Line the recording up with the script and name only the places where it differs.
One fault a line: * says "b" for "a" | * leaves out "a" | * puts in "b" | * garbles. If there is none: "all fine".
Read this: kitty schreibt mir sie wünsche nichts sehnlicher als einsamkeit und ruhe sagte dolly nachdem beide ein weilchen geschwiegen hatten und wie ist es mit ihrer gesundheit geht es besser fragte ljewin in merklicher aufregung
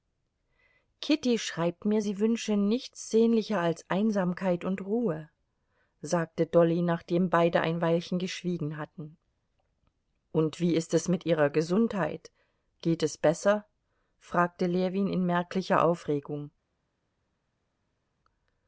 all fine